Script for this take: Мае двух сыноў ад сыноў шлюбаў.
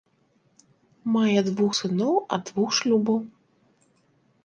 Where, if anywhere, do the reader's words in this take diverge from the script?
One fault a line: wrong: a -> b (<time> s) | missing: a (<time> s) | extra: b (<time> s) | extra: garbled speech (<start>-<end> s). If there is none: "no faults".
wrong: сыноў -> двух (2.5 s)